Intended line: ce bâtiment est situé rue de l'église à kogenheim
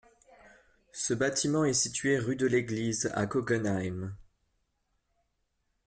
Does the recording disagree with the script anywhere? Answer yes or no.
no